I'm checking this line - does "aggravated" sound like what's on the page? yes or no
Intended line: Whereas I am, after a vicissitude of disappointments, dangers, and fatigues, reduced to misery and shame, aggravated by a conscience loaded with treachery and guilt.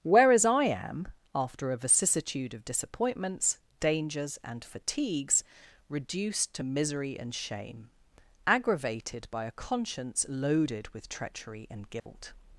yes